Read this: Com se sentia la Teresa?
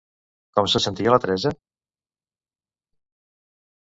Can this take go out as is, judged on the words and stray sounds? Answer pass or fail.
pass